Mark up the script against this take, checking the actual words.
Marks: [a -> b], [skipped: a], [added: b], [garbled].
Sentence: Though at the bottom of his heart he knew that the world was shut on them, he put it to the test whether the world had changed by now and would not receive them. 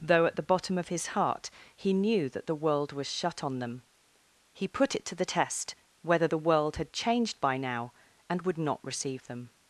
Though at the bottom of his heart he knew that the world was shut on them, he put it to the test whether the world had changed by now and would not receive them.